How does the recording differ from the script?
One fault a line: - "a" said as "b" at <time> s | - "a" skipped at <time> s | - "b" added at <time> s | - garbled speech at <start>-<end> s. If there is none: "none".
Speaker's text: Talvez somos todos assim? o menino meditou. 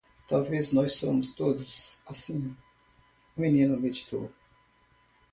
- "nós" added at 0.7 s